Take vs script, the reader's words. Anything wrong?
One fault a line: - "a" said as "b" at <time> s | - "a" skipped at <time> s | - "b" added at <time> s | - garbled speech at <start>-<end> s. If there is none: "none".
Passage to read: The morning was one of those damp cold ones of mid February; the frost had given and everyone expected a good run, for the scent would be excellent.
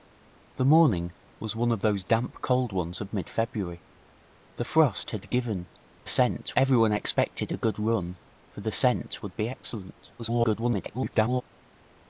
- "and" said as "scent" at 6.1 s
- garbled speech at 10.2-11.4 s